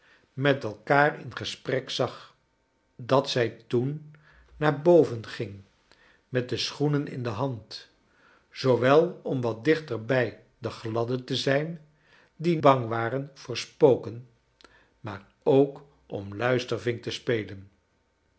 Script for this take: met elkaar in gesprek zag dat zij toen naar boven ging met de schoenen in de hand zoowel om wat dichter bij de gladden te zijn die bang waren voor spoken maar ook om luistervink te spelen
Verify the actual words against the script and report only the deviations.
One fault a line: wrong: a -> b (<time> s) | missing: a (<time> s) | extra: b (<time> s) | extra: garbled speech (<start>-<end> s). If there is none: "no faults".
no faults